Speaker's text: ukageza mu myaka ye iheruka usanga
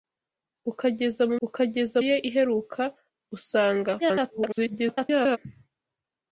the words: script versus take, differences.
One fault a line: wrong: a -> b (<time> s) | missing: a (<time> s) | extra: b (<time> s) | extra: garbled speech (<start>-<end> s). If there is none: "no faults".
wrong: myaka -> ukageza (1.5 s)
extra: garbled speech (4.0-5.4 s)